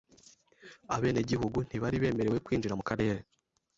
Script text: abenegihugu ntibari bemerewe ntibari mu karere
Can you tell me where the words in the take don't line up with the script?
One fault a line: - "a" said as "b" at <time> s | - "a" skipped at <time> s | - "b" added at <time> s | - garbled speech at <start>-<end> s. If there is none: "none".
- "ntibari" said as "kwinjira" at 2.5 s